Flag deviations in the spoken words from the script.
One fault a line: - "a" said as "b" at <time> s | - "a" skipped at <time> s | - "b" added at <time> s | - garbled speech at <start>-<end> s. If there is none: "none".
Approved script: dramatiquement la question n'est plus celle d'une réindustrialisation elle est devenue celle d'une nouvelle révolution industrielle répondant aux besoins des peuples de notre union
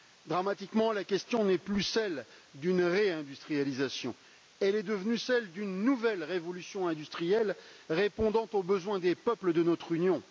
none